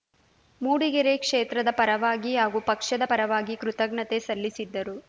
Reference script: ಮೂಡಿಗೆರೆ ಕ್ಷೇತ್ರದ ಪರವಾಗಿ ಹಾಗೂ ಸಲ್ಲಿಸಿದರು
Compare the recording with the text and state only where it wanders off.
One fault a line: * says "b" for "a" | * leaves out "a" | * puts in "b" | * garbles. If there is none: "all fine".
* puts in "ಪಕ್ಷದ ಪರವಾಗಿ ಕೃತಜ್ಞತೆ"